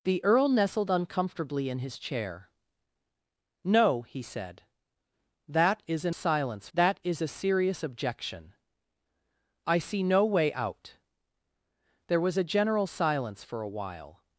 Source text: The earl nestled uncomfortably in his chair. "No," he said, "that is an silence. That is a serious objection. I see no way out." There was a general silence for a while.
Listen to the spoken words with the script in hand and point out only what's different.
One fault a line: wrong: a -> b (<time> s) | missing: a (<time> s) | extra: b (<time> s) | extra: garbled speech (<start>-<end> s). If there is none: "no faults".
no faults